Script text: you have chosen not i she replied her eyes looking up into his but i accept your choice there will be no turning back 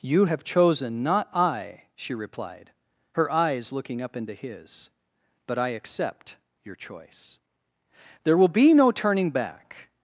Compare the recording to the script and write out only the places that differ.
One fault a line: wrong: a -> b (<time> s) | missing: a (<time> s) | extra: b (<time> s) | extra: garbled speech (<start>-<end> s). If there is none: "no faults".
no faults